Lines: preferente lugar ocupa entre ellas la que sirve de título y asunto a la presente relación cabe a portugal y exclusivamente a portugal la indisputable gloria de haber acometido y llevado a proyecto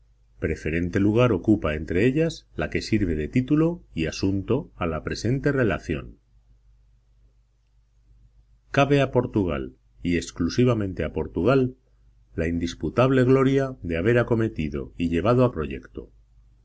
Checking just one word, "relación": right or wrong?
right